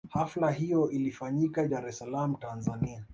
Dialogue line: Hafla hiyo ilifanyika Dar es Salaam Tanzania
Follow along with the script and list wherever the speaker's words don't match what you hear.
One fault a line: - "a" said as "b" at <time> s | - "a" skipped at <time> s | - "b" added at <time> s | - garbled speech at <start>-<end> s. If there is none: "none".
none